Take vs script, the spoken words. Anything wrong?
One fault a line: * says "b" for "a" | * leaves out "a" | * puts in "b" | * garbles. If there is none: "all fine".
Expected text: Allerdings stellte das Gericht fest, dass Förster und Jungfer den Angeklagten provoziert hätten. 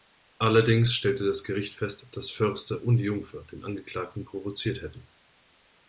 all fine